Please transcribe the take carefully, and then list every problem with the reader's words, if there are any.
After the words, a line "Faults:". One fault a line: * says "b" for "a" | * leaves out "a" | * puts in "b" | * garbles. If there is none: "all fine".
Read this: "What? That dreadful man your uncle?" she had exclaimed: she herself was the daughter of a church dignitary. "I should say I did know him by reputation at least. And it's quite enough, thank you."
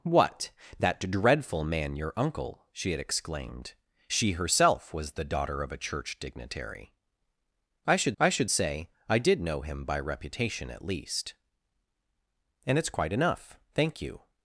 "What? That dreadful man your uncle?" she had exclaimed: she herself was the daughter of a church dignitary. "I should I should say I did know him by reputation at least. And it's quite enough, thank you."
Faults:
* puts in "I should"